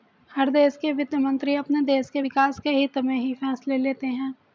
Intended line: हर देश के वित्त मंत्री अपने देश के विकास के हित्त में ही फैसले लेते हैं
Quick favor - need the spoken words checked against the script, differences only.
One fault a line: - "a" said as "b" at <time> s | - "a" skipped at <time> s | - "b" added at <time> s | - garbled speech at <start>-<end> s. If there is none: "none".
none